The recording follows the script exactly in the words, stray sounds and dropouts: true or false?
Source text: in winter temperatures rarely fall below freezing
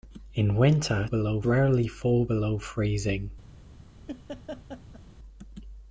false